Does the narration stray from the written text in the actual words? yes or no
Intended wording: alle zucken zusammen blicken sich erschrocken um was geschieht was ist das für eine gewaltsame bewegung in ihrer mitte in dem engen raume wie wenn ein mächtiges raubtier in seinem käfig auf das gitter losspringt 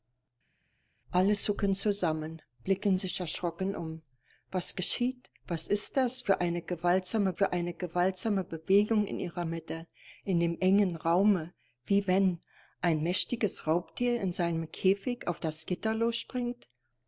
yes